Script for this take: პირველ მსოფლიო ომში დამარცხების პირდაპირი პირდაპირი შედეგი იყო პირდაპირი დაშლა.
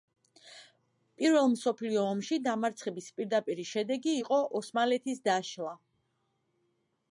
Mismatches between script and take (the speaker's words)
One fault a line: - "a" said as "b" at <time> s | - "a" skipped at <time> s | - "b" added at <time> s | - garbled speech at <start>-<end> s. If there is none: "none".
- "პირდაპირი" skipped at 3.7 s
- "პირდაპირი" said as "ოსმალეთის" at 4.6 s